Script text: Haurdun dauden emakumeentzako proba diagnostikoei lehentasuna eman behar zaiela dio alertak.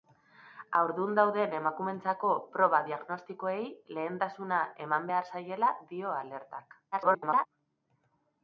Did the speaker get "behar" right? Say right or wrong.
right